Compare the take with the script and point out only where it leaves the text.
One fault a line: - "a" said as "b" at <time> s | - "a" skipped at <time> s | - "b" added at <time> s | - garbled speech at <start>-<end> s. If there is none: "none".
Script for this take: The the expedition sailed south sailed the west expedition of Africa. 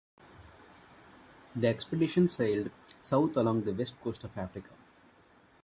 - "the" skipped at 1.7 s
- "sailed" said as "along" at 3.4 s
- "expedition" said as "coast" at 4.0 s